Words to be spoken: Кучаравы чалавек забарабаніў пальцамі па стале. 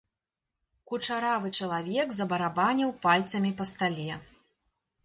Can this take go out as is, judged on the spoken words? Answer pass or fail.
pass